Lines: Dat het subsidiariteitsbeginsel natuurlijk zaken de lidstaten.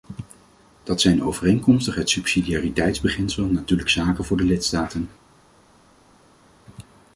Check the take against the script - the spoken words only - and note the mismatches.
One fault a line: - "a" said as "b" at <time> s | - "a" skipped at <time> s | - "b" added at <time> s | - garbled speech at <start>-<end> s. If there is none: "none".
- "zijn overeenkomstig" added at 1.0 s
- "voor" added at 4.2 s